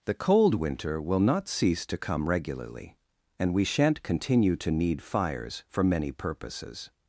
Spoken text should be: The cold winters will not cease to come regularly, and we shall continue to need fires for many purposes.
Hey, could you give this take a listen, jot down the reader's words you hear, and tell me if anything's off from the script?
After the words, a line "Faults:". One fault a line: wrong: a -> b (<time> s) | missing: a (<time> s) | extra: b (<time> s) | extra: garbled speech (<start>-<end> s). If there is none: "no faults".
The cold winter will not cease to come regularly, and we shan't continue to need fires for many purposes.
Faults:
wrong: winters -> winter (0.6 s)
wrong: shall -> shan't (3.7 s)